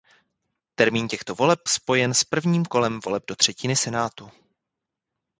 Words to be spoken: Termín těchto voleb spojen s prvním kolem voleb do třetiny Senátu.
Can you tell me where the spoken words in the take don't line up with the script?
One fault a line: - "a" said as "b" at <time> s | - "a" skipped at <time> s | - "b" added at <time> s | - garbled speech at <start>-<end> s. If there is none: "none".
none